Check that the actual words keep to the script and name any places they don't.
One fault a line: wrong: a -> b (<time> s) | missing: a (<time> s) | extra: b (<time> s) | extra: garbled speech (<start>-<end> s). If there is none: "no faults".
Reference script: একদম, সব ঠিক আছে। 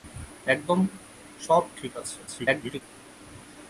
extra: garbled speech (2.3-2.8 s)